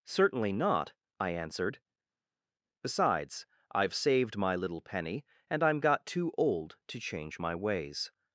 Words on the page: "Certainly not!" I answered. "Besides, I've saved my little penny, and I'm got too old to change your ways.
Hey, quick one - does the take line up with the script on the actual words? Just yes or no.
no